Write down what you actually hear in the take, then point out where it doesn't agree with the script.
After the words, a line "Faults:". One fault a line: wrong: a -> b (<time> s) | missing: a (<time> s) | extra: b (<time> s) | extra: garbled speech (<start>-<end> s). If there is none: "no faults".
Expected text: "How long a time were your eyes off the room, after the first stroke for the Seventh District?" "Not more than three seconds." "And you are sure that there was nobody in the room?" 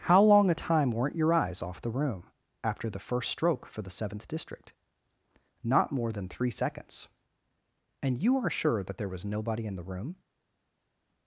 "How long a time weren't your eyes off the room, after the first stroke for the Seventh District?" "Not more than three seconds." "And you are sure that there was nobody in the room?"
Faults:
wrong: were -> weren't (0.9 s)